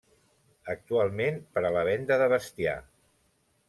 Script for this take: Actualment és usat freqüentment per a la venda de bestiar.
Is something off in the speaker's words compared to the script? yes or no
yes